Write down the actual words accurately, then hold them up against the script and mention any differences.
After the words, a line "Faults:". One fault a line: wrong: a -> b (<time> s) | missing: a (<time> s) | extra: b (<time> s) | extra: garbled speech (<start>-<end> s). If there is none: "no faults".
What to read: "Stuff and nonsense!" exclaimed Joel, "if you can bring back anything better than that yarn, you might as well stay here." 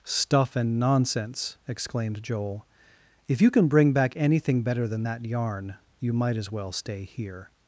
"Stuff and nonsense!" exclaimed Joel, "if you can bring back anything better than that yarn, you might as well stay here."
Faults:
no faults